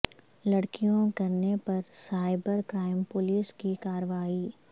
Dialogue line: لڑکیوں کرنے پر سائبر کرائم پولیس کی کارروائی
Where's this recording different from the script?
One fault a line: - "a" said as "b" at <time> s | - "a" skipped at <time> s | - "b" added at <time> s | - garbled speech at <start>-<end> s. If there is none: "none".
none